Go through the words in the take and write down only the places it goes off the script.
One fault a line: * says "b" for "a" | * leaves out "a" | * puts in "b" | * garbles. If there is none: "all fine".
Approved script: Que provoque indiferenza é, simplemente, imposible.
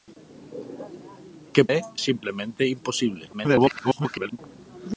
* leaves out "provoque indiferenza"
* garbles